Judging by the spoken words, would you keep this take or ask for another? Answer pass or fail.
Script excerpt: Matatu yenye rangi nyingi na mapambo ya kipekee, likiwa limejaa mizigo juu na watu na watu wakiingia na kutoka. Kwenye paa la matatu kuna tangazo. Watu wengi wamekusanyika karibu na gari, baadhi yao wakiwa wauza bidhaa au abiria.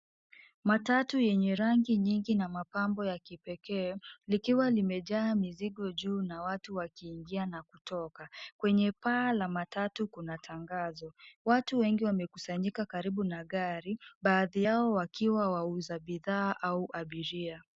fail